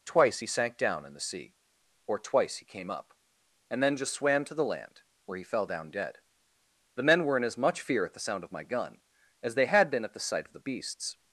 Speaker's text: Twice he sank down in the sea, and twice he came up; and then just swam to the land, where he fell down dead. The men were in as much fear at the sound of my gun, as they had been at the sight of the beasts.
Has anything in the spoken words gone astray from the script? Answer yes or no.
yes